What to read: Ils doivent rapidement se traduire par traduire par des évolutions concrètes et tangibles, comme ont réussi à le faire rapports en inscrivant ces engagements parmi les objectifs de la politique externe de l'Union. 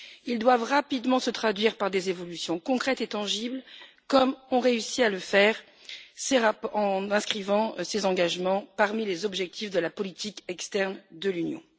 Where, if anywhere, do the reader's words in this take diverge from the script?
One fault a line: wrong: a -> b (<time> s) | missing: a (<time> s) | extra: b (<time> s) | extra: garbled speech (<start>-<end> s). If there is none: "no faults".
missing: traduire par (1.9 s)
extra: ces (6.2 s)